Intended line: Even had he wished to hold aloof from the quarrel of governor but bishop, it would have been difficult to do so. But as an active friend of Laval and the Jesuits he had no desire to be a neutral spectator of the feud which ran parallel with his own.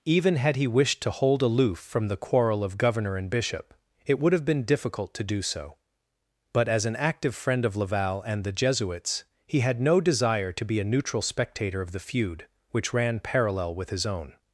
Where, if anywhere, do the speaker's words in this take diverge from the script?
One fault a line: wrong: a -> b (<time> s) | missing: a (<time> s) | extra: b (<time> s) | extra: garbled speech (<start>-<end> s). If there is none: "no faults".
wrong: but -> and (3.2 s)